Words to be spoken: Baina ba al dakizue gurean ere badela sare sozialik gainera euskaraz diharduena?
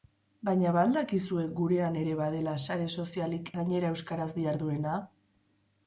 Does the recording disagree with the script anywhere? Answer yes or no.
no